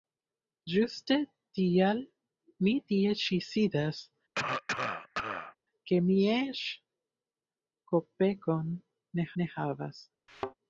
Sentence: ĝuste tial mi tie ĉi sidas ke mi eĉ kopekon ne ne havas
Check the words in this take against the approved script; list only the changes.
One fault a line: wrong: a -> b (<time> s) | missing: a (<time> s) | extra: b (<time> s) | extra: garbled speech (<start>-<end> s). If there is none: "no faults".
no faults